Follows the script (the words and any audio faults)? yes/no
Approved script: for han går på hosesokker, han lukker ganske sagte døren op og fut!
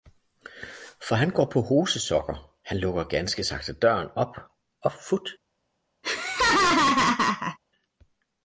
no